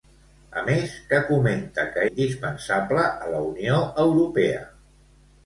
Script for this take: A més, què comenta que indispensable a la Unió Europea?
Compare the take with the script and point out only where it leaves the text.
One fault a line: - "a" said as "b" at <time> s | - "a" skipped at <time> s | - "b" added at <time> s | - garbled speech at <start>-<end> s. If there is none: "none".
none